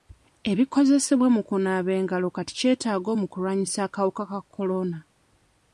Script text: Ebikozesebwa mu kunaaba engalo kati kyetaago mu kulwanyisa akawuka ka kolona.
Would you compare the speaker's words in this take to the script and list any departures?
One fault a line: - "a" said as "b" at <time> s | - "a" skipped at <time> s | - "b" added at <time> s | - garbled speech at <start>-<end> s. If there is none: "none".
none